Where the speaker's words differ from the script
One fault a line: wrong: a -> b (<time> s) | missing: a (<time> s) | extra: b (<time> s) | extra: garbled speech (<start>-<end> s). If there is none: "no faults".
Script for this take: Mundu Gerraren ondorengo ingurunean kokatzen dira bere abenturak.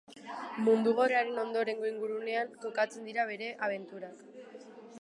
no faults